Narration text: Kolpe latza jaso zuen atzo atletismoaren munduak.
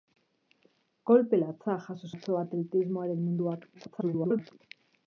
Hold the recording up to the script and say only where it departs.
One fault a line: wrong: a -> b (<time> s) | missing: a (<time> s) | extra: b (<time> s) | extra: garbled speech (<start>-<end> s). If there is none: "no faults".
missing: zuen (2.1 s)
extra: garbled speech (3.7-4.5 s)